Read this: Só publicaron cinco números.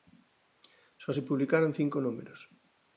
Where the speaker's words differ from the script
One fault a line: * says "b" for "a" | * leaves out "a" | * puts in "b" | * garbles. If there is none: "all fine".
* puts in "se"